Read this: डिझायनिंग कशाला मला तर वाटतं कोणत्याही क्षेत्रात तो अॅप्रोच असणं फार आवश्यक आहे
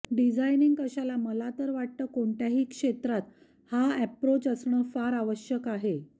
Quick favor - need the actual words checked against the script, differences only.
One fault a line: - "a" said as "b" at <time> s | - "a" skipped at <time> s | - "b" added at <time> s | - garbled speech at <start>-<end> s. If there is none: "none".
- "तो" said as "हा" at 3.7 s